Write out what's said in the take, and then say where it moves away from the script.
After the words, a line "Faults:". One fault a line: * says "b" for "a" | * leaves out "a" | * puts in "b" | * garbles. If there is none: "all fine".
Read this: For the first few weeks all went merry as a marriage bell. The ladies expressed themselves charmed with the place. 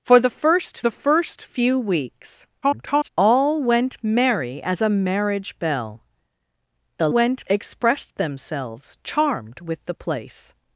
For the first the first few weeks [garbled] all went merry as a marriage bell. The went expressed themselves charmed with the place.
Faults:
* puts in "the first"
* garbles
* says "went" for "ladies"